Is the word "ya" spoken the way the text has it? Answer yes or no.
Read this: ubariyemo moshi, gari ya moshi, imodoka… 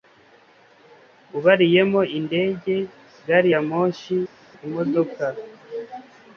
yes